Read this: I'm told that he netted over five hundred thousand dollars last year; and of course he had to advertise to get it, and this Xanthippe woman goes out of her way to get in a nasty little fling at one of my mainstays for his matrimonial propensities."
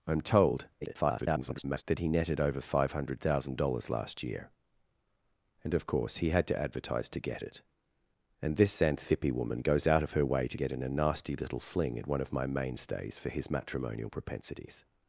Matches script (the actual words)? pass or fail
fail